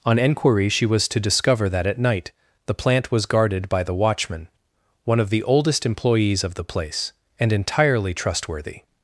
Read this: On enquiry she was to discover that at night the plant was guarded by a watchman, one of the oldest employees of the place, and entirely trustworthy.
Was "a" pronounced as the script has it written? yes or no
no